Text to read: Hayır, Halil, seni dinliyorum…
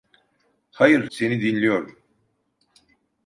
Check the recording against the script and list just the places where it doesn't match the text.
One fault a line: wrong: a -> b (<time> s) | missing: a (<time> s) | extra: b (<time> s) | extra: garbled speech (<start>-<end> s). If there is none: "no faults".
missing: Halil (1.1 s)